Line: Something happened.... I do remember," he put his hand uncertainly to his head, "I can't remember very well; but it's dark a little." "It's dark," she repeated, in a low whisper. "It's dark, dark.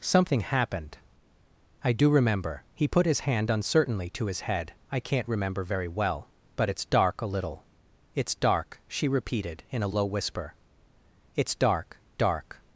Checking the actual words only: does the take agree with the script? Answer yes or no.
yes